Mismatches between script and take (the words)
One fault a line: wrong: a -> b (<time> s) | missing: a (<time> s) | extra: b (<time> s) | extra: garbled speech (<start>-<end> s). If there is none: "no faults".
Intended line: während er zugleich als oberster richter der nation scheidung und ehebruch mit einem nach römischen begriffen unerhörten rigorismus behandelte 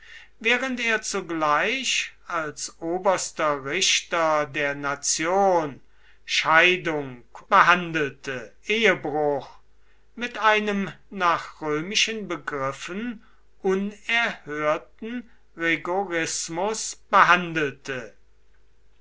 wrong: und -> behandelte (7.5 s)